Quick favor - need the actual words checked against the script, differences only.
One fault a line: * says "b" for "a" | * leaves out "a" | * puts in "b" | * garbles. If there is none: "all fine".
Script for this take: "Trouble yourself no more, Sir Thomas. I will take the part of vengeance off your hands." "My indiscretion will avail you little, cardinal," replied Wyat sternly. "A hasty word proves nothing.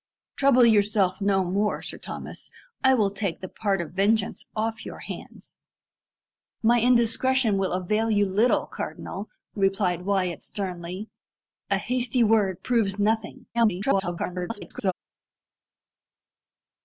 * garbles